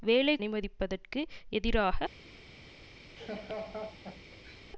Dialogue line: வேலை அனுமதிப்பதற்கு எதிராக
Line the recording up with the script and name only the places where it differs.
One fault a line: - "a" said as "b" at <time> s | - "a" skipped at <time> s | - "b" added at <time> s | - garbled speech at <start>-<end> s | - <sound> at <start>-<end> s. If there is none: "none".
- laugh at 3.2-4.6 s